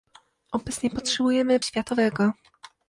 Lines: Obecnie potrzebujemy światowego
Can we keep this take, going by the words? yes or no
yes